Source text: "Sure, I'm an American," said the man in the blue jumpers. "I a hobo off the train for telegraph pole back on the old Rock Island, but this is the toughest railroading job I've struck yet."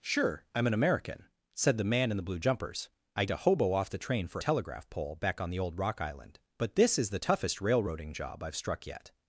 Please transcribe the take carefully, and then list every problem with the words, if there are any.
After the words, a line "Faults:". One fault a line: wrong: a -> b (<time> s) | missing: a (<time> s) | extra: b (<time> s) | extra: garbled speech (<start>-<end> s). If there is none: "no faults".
"Sure, I'm an American," said the man in the blue jumpers. "I a hobo off the train for telegraph pole back on the old Rock Island, but this is the toughest railroading job I've struck yet."
Faults:
no faults